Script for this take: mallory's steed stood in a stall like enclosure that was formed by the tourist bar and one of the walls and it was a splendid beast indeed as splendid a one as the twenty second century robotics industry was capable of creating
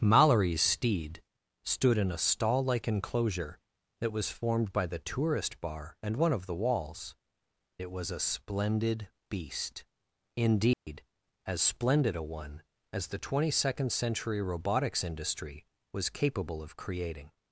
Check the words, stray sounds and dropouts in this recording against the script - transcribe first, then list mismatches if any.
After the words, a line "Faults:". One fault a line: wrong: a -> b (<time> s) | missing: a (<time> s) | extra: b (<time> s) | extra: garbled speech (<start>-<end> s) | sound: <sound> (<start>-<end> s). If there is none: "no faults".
mallory's steed stood in a stall like enclosure that was formed by the tourist bar and one of the walls it was a splendid beast indeed as splendid a one as the twenty second century robotics industry was capable of creating
Faults:
missing: and (7.2 s)
sound: dropout (10.7-10.9 s)